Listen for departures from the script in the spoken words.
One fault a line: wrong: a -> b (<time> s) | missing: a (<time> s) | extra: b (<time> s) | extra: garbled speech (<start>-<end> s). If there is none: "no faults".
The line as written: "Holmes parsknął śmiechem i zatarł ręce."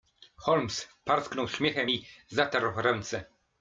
no faults